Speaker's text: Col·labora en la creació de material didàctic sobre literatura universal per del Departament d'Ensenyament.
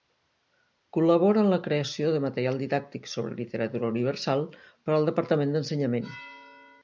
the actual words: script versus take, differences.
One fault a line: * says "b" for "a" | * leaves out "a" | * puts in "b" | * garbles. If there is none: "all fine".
* says "al" for "del"